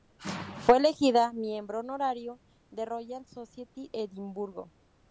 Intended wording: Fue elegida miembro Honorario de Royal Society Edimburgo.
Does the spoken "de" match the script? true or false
true